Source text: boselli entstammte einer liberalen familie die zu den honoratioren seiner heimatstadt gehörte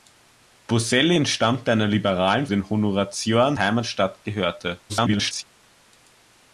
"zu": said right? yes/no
no